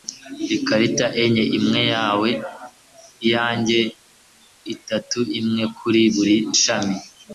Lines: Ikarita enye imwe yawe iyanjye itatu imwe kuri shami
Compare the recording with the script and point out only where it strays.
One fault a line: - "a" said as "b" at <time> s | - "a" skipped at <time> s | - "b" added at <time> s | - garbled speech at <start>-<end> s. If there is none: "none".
- "buri" added at 6.2 s